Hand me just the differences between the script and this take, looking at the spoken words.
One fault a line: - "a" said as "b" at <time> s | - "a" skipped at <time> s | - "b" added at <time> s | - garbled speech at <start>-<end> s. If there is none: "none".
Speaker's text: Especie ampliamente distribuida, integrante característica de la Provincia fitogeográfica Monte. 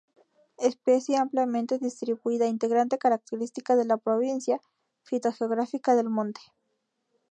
- "del" added at 6.0 s